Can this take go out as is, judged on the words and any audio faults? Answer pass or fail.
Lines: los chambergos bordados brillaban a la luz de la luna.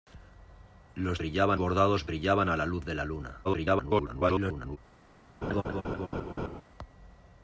fail